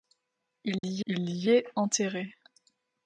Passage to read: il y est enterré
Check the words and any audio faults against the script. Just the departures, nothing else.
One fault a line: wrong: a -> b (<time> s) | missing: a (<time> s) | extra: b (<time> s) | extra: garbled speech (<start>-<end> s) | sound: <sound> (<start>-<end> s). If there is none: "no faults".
sound: dropout (0.8-0.8 s)
extra: il y (1.0 s)